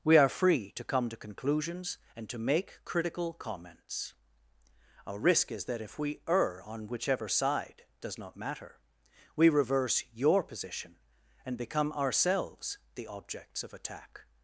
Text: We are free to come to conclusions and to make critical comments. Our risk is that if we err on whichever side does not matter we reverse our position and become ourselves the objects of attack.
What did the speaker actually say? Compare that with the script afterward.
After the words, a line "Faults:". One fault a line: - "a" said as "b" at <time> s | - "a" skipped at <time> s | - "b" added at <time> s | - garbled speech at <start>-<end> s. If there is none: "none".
We are free to come to conclusions and to make critical comments. Our risk is that if we err on whichever side does not matter we reverse your position and become ourselves the objects of attack.
Faults:
- "our" said as "your" at 10.1 s